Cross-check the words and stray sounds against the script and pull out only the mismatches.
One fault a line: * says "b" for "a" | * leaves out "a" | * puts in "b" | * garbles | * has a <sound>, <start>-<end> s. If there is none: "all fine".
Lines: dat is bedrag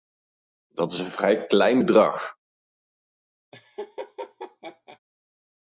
* puts in "een vrij klein"
* has a laugh, 3.5-5.0 s